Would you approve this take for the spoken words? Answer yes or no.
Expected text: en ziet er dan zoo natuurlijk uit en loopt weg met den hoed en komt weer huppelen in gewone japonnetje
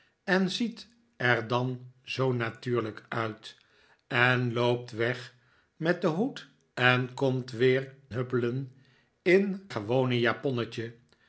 yes